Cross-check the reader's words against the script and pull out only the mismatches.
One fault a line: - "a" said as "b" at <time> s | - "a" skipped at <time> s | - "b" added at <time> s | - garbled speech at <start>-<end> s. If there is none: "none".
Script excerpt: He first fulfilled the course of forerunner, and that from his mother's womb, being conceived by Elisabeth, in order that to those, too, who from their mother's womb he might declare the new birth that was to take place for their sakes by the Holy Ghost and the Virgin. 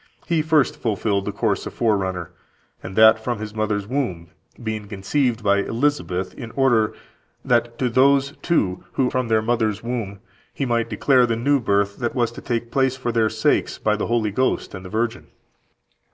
none